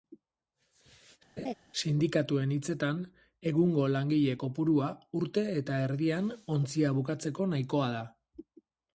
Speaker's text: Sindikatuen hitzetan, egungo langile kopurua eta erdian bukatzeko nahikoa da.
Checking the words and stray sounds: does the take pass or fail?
fail